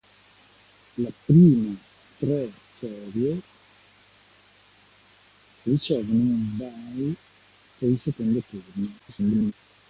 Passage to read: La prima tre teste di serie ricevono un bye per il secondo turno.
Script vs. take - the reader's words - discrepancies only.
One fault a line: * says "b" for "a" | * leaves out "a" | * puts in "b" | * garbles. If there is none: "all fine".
* leaves out "teste di"
* garbles